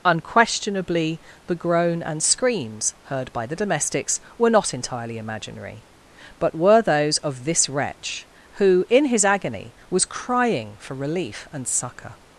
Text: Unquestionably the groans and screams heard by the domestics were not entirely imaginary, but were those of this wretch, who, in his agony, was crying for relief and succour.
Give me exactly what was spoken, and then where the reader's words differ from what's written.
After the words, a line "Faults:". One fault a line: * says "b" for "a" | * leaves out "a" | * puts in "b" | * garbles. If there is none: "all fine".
Unquestionably the groan and screams heard by the domestics were not entirely imaginary, but were those of this wretch, who, in his agony, was crying for relief and succour.
Faults:
* says "groan" for "groans"